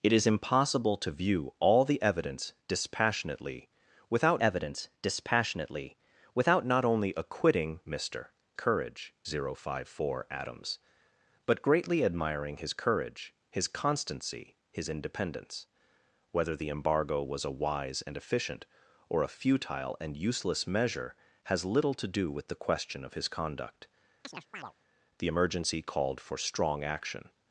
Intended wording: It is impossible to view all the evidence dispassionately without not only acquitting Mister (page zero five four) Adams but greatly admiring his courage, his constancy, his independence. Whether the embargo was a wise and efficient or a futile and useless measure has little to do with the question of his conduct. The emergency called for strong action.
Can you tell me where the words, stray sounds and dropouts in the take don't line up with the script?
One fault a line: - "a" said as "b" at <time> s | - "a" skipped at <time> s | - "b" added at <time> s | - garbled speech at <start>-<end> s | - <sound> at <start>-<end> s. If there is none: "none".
- "evidence dispassionately without" added at 4.4 s
- "page" said as "courage" at 8.5 s
- chirp at 24.2-24.7 s